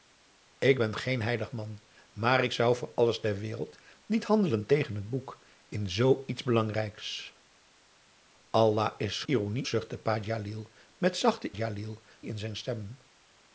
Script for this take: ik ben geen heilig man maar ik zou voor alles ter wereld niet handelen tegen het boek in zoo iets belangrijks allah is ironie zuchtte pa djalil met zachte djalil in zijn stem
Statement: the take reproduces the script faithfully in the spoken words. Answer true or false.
true